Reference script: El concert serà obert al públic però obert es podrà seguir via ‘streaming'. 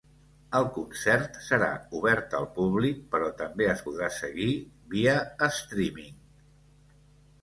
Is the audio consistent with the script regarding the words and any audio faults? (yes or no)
no